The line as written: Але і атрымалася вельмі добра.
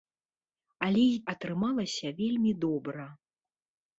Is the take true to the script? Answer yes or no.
yes